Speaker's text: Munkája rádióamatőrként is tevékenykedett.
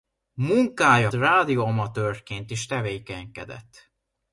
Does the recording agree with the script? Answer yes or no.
yes